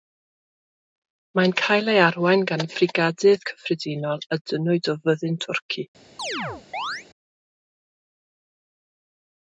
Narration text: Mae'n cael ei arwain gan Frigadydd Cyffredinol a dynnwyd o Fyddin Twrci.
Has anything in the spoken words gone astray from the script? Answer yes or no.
no